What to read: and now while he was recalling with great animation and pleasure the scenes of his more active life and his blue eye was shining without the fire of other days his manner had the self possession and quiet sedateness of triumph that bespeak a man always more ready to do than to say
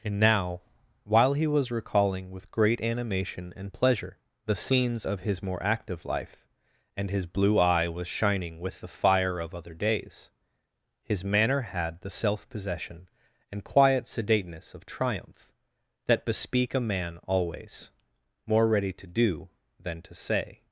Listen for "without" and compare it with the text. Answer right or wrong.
wrong